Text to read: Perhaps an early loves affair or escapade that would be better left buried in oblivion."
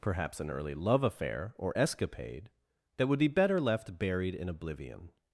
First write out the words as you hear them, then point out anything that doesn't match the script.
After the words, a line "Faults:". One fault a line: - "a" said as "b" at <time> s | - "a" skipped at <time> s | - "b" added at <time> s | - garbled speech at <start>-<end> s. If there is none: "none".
Perhaps an early love affair or escapade that would be better left buried in oblivion."
Faults:
- "loves" said as "love" at 0.7 s